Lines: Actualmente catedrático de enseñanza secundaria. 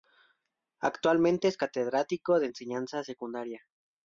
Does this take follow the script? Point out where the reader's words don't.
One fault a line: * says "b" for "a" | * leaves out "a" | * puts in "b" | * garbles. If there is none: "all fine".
* puts in "es"